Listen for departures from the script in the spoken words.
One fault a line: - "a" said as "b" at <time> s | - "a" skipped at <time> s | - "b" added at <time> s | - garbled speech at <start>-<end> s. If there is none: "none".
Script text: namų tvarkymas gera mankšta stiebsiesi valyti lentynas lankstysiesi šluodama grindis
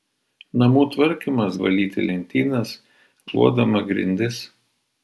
- "gera mankšta stiebsiesi" skipped at 1.6 s
- "lankstysiesi" skipped at 2.7 s